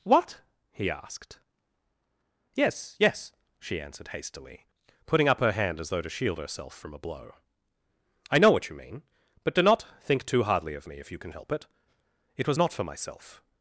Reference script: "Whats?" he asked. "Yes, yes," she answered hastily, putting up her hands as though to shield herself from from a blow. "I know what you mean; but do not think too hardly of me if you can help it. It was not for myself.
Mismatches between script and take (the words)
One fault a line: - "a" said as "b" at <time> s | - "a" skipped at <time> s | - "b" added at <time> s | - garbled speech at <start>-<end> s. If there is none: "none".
- "Whats" said as "What" at 0.0 s
- "hands" said as "hand" at 5.5 s
- "from" skipped at 6.9 s